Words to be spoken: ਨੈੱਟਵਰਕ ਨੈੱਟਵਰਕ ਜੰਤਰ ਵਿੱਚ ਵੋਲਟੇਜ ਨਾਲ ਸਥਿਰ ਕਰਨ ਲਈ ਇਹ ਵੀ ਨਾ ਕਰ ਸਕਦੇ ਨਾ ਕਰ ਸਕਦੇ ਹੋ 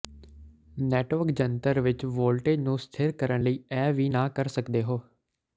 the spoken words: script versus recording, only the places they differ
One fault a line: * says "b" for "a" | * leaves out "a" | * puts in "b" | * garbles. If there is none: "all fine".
* leaves out "ਨੈੱਟਵਰਕ"
* says "ਨੂੰ" for "ਨਾਲ"
* leaves out "ਨਾ ਕਰ ਸਕਦੇ"